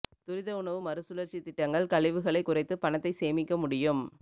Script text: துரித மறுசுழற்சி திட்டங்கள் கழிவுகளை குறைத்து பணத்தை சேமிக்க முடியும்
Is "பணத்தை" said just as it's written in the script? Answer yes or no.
yes